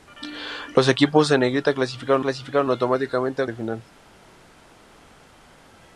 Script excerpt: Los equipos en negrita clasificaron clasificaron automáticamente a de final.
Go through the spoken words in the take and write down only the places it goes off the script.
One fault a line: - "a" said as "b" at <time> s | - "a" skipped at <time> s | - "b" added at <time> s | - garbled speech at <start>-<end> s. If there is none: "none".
none